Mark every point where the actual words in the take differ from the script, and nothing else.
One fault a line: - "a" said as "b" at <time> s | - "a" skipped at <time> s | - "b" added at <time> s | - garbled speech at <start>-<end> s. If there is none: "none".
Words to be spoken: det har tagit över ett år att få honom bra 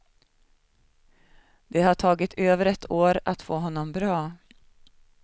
none